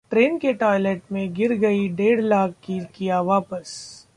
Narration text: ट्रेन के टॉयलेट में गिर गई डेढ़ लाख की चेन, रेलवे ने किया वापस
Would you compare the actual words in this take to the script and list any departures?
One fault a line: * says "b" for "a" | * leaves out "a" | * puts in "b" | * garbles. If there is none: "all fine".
* leaves out "चेन रेलवे ने"